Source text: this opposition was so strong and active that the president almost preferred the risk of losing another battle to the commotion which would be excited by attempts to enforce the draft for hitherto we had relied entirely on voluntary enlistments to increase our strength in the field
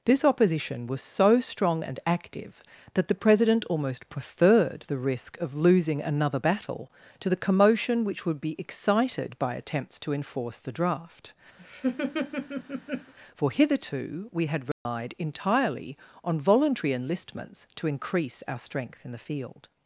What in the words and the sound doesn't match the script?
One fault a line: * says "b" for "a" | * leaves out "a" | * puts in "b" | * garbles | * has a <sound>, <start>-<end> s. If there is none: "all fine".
* has a laugh, 11.6-13.1 s
* has a dropout, 14.7-14.9 s